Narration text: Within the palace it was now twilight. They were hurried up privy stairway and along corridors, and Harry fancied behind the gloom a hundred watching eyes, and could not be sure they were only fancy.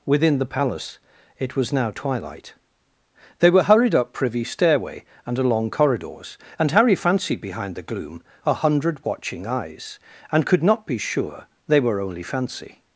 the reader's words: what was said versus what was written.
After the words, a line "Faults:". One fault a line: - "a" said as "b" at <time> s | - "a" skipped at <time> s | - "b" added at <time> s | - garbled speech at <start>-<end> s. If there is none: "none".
Within the palace it was now twilight. They were hurried up privy stairway and along corridors, and Harry fancied behind the gloom a hundred watching eyes, and could not be sure they were only fancy.
Faults:
none